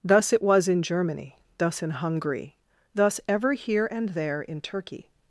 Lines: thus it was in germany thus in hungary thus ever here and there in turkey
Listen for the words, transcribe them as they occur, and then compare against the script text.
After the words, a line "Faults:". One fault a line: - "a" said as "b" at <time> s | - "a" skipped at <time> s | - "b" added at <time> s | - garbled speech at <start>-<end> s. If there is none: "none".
thus it was in germany thus in hungary thus ever here and there in turkey
Faults:
none